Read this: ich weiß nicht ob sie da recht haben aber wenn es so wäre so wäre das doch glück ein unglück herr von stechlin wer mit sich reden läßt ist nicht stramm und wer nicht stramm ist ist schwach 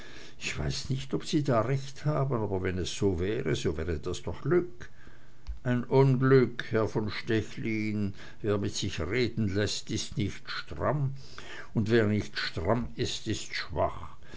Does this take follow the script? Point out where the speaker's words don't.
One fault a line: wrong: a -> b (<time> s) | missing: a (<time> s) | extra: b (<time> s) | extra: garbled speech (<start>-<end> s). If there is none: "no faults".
no faults